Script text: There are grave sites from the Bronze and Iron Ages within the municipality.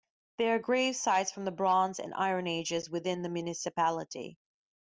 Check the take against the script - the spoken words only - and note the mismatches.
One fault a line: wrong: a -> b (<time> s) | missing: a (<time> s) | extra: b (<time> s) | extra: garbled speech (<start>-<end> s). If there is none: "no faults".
no faults